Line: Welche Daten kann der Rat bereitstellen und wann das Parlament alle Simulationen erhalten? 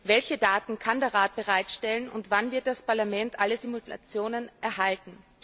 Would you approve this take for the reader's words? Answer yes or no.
no